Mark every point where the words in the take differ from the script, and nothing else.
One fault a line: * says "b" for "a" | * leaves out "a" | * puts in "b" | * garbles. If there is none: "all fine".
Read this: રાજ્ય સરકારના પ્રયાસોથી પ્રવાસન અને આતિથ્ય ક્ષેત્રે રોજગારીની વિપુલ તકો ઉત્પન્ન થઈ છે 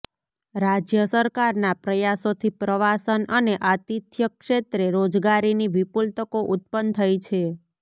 all fine